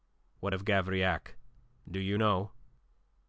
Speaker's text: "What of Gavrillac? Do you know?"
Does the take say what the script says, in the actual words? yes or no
yes